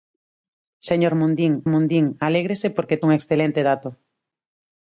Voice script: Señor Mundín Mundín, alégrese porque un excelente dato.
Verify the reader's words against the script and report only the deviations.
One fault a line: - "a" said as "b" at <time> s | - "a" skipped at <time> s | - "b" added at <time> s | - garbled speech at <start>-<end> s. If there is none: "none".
none